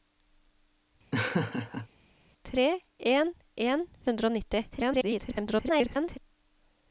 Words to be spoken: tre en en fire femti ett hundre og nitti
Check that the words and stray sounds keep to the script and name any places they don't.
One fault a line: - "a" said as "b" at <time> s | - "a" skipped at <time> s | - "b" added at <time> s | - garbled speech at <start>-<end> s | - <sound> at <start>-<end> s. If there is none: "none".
- laugh at 1.1-1.9 s
- "fire femti ett" skipped at 3.9 s
- garbled speech at 4.7-6.2 s